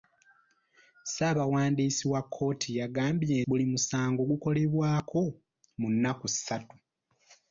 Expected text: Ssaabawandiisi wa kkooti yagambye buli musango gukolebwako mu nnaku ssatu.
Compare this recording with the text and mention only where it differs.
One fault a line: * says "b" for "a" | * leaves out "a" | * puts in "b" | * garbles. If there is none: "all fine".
all fine